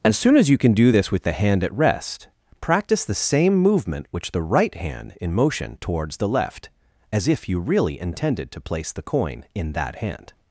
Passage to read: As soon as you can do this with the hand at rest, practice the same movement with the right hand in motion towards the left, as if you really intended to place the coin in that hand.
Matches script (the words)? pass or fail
fail